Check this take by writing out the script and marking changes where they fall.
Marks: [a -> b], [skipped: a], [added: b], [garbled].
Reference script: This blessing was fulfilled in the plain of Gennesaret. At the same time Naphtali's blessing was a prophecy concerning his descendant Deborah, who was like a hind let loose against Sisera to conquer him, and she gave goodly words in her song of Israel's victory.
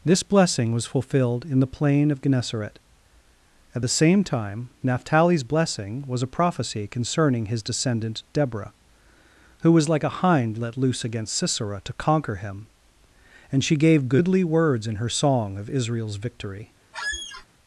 This blessing was fulfilled in the plain of Gennesaret. At the same time Naphtali's blessing was a prophecy concerning his descendant Deborah, who was like a hind let loose against Sisera to conquer him, and she gave goodly words in her song of Israel's victory.